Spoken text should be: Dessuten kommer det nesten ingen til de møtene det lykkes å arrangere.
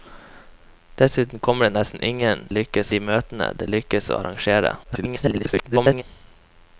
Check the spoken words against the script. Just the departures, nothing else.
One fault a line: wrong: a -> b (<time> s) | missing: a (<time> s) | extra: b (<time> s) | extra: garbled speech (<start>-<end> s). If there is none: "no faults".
wrong: til -> lykkes (2.5 s)
extra: garbled speech (4.8-6.0 s)